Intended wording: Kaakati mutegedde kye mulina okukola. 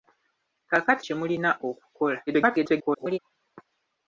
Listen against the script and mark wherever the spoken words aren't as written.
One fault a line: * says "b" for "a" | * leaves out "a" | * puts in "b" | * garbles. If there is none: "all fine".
* leaves out "mutegedde"
* garbles